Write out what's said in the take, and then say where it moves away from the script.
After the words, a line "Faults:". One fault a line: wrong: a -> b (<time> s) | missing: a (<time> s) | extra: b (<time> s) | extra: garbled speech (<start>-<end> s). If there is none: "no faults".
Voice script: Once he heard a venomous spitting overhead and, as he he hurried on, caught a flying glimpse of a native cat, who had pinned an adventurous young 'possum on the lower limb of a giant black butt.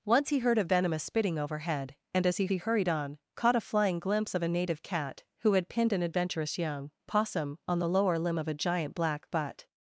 Once he heard a venomous spitting overhead and, as he he hurried on, caught a flying glimpse of a native cat, who had pinned an adventurous young 'possum on the lower limb of a giant black butt.
Faults:
no faults